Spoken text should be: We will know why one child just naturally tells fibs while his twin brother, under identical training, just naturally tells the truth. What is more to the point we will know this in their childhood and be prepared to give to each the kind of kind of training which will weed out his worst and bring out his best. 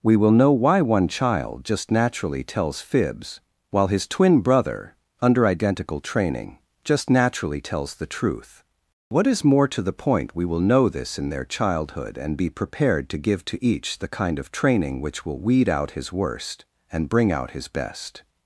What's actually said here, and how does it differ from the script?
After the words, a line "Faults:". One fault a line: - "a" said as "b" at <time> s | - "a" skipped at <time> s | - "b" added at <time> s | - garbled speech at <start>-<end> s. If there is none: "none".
We will know why one child just naturally tells fibs while his twin brother, under identical training, just naturally tells the truth. What is more to the point we will know this in their childhood and be prepared to give to each the kind of training which will weed out his worst and bring out his best.
Faults:
- "kind of" skipped at 14.5 s